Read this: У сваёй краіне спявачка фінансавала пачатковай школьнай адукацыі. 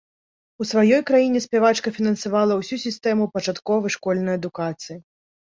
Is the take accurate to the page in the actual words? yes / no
no